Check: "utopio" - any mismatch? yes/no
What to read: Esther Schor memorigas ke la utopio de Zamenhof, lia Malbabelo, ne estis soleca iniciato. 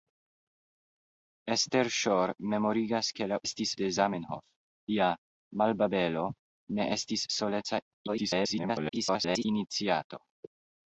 yes